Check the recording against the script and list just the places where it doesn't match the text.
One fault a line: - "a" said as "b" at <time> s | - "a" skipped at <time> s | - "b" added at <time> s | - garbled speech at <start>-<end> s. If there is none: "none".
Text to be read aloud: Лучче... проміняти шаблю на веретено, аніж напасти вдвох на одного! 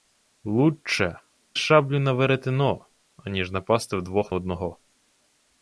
- "проміняти" skipped at 1.2 s
- "на" skipped at 4.3 s